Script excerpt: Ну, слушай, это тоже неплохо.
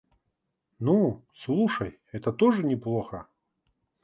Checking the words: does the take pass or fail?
pass